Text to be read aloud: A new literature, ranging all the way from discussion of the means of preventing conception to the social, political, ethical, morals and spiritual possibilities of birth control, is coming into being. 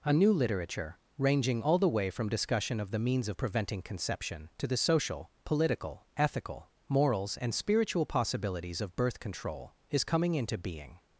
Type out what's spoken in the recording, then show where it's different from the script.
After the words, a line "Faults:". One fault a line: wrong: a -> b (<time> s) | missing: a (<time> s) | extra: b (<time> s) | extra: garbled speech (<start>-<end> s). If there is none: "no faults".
A new literature, ranging all the way from discussion of the means of preventing conception to the social, political, ethical, morals and spiritual possibilities of birth control, is coming into being.
Faults:
no faults